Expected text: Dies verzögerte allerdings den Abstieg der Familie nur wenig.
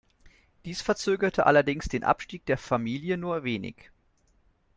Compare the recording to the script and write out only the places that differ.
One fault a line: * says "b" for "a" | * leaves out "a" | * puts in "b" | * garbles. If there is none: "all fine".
all fine